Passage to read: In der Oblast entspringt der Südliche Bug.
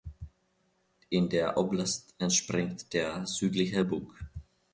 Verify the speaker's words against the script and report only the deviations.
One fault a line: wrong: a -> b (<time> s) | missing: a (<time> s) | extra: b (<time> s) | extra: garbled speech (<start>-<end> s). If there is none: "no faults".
no faults